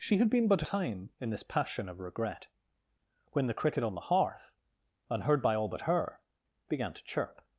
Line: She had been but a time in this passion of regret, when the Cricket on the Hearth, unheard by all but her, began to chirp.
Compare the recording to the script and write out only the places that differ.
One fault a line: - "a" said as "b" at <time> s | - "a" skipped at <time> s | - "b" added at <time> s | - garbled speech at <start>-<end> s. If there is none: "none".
none